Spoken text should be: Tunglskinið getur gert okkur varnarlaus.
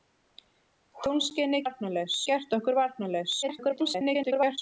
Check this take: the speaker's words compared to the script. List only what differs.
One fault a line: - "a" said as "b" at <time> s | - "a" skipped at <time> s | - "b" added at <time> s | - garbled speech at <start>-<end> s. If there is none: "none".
- "getur" said as "varnarlaus" at 1.6 s
- garbled speech at 3.4-4.6 s